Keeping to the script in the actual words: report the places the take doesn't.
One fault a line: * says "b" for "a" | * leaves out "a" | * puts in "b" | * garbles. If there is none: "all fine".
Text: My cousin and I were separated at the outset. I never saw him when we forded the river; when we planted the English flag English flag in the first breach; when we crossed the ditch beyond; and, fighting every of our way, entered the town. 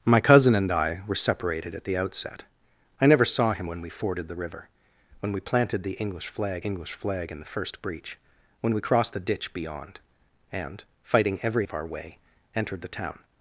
all fine